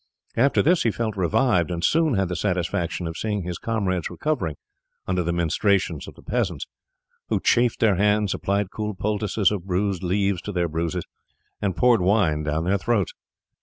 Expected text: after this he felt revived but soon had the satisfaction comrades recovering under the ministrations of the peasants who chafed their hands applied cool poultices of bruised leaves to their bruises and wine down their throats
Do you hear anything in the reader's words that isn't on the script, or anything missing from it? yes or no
yes